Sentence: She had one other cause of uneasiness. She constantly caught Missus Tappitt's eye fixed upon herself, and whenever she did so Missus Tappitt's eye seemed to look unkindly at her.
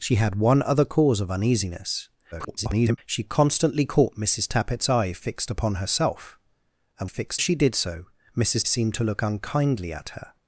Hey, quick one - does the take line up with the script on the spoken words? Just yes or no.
no